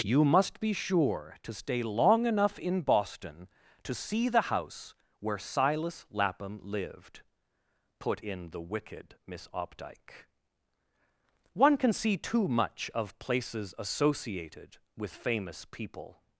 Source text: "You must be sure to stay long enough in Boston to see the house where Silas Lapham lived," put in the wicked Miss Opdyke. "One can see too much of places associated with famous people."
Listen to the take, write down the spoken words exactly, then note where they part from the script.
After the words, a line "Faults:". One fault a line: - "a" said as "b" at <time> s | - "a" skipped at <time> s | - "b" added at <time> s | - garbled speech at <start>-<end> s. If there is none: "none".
"You must be sure to stay long enough in Boston to see the house where Silas Lapham lived," put in the wicked Miss Opdyke. "One can see too much of places associated with famous people."
Faults:
none